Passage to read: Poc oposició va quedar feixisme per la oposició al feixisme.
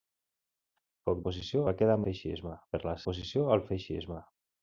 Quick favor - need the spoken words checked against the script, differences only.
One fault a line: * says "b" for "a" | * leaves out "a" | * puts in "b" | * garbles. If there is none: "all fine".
all fine